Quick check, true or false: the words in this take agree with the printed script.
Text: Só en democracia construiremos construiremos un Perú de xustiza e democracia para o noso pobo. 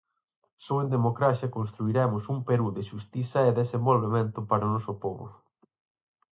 false